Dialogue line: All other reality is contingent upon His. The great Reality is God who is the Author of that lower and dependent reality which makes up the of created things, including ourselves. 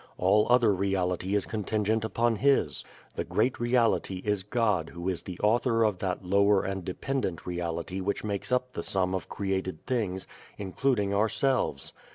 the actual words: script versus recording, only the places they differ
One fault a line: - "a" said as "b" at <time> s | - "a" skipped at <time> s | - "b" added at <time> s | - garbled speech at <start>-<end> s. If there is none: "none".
- "sum" added at 8.8 s